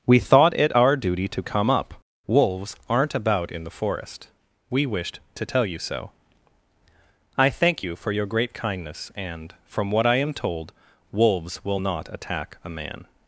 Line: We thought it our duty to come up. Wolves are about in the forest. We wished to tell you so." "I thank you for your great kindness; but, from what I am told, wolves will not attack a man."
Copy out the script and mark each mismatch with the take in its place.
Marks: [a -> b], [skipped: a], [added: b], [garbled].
We thought it our duty to come up. Wolves [are -> aren't] about in the forest. We wished to tell you so." "I thank you for your great kindness; [but, -> and] from what I am told, wolves will not attack a man."